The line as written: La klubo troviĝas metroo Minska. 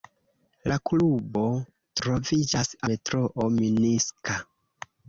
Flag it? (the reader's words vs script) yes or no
no